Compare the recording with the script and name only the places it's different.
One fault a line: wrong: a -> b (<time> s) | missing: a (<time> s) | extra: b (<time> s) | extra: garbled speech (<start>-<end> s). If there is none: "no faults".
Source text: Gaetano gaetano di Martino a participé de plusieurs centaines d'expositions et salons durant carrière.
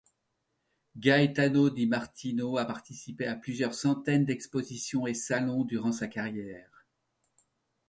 missing: gaetano (1.7 s)
wrong: de -> à (3.3 s)
extra: sa (5.9 s)